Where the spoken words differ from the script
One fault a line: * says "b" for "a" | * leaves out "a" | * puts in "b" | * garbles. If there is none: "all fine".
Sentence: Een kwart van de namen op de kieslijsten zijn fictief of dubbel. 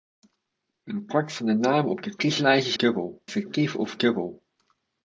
* says "dubbel" for "zijn"